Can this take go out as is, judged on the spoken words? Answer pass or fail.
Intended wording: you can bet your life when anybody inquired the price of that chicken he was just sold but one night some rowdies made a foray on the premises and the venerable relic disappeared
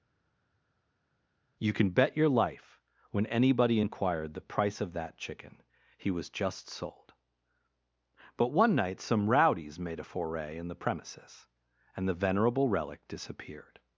fail